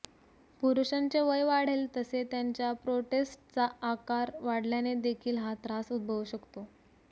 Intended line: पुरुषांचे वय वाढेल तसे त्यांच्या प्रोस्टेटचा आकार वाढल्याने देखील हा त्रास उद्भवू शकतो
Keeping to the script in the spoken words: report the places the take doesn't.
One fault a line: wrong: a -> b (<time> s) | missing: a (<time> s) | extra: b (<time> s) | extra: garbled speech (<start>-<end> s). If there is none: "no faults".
no faults